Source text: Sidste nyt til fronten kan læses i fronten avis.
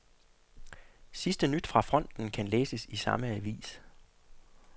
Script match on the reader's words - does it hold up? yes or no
no